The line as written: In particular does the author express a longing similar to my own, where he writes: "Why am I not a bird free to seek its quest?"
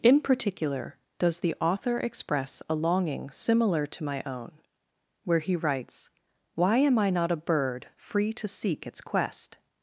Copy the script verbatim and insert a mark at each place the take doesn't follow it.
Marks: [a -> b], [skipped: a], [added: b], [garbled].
In particular does the author express a longing similar to my own, where he writes: "Why am I not a bird free to seek its quest?"